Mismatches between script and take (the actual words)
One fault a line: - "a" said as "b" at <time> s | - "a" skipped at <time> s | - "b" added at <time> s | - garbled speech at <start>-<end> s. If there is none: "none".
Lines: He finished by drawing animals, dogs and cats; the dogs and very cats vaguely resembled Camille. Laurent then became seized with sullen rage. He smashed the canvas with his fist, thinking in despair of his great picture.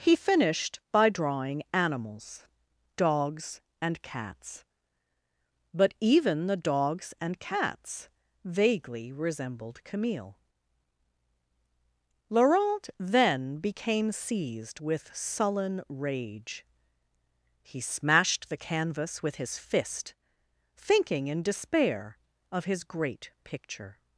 - "but even" added at 5.8 s
- "very" skipped at 7.4 s